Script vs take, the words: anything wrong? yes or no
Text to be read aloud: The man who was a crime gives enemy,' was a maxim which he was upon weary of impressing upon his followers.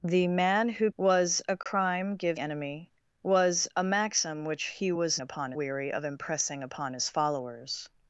no